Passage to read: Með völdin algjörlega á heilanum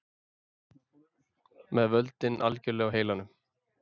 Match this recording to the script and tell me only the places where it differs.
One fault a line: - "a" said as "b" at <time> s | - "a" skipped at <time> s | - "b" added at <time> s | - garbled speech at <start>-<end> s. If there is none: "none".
none